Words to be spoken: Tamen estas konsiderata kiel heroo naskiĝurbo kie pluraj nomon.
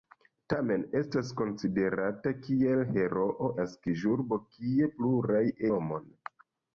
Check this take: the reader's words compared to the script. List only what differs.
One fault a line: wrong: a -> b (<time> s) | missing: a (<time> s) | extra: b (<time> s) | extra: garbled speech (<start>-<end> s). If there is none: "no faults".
no faults